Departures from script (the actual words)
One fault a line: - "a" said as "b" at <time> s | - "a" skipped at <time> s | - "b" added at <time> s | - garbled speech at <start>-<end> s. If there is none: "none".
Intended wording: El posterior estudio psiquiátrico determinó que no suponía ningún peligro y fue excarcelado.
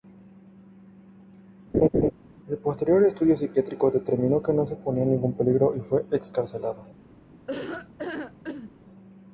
none